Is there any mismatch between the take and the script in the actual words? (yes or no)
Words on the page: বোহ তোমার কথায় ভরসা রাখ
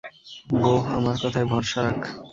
yes